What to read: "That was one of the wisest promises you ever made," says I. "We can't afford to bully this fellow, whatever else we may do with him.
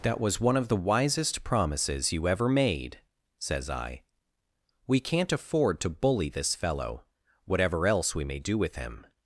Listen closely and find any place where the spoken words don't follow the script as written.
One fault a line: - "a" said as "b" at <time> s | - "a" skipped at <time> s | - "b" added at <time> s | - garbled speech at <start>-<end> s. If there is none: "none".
none